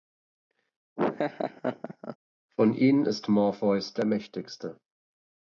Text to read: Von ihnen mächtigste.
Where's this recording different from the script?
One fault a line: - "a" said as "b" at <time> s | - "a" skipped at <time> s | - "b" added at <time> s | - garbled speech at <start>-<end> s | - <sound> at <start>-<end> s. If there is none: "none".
- laugh at 1.0-2.2 s
- "ist Morpheus der" added at 3.1 s